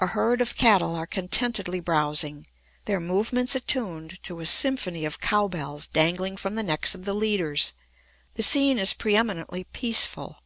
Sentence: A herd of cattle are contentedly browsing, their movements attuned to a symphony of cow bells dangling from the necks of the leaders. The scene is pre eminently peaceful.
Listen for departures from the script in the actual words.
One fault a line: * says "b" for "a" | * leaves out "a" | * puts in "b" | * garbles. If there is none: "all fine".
all fine